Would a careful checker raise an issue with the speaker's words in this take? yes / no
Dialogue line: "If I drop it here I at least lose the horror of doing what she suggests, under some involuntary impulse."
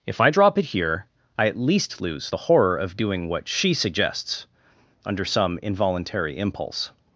no